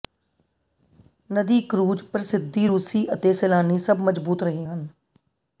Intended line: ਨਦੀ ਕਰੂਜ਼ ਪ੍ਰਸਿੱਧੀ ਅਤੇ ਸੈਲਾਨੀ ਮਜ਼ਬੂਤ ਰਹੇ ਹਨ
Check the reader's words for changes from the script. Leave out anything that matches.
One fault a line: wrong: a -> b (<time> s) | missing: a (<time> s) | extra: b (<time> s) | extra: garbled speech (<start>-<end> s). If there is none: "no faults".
extra: ਰੂਸੀ (2.6 s)
extra: ਸਭ (3.8 s)